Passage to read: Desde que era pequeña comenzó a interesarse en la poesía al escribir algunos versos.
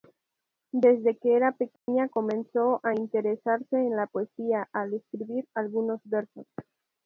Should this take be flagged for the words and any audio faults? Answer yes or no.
yes